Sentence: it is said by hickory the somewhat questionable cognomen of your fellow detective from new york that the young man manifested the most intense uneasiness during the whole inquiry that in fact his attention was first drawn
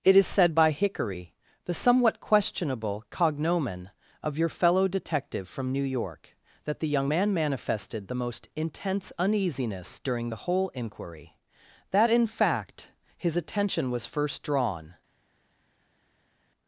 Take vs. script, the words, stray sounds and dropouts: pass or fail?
pass